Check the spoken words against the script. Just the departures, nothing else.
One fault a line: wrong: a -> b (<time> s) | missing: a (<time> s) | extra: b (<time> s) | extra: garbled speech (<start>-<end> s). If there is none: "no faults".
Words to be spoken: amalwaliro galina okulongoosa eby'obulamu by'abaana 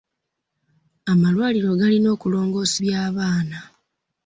missing: eby'obulamu (2.8 s)